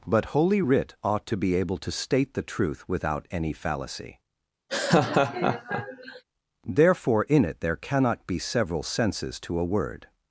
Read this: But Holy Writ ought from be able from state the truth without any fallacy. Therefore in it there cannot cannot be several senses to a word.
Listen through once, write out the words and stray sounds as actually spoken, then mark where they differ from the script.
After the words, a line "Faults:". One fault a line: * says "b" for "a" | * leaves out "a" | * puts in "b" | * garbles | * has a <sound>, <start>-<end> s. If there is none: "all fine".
But Holy Writ ought to be able to state the truth without any fallacy. Therefore in it there cannot be several senses to a word.
Faults:
* says "to" for "from"
* says "to" for "from"
* has a laugh, 4.7-6.2 s
* leaves out "cannot"